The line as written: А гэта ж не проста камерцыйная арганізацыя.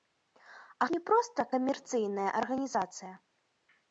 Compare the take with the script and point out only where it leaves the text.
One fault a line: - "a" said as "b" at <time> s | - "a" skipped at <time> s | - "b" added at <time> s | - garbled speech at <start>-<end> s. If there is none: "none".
- "гэта" skipped at 0.9 s